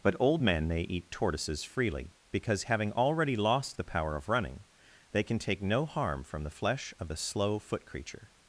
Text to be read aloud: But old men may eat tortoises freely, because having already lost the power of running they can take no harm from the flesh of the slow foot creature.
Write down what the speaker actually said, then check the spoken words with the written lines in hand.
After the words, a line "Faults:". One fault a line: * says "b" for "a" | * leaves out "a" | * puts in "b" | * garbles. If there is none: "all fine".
But old men may eat tortoises freely, because having already lost the power of running they can take no harm from the flesh of the slow foot creature.
Faults:
all fine